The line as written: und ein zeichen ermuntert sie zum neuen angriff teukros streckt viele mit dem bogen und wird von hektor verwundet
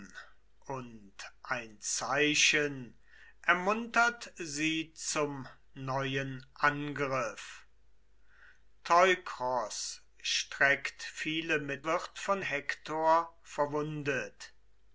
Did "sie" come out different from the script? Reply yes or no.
no